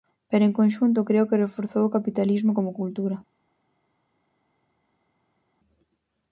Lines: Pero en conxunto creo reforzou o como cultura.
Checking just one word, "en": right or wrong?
right